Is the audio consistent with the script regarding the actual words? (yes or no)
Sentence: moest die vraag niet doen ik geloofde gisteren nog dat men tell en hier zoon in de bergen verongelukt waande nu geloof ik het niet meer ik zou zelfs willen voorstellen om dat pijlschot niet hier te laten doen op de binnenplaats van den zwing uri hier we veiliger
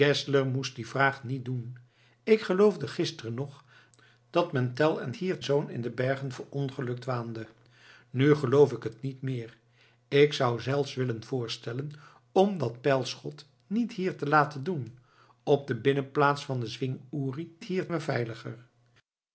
yes